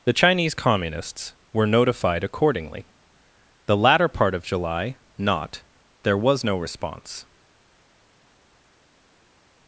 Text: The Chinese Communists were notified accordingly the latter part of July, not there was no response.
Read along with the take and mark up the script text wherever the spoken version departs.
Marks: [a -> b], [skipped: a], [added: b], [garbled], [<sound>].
The Chinese Communists were notified accordingly the latter part of July, not there was no response.